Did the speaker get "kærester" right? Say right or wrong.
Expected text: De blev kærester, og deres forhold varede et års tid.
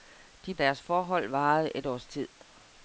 wrong